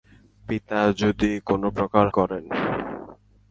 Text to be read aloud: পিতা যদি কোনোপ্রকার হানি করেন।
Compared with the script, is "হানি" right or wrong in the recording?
wrong